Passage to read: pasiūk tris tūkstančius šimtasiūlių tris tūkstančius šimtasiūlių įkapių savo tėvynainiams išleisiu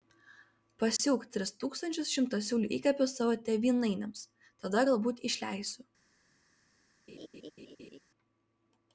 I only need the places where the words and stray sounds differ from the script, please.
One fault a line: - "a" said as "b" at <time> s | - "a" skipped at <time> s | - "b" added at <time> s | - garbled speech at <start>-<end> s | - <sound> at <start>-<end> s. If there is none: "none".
- dropout at 1.0-1.0 s
- "tris tūkstančius šimtasiūlių" skipped at 2.7 s
- "tada galbūt" added at 4.6 s
- laugh at 7.1-8.0 s